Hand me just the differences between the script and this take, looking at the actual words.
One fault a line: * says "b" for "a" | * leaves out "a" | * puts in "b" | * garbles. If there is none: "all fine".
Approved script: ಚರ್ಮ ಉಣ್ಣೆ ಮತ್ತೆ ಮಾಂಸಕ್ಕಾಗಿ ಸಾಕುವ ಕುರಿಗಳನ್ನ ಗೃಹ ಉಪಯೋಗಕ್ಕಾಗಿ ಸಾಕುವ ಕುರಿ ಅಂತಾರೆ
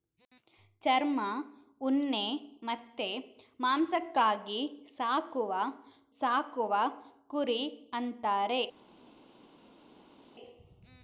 * leaves out "ಕುರಿಗಳನ್ನ ಗೃಹ ಉಪಯೋಗಕ್ಕಾಗಿ"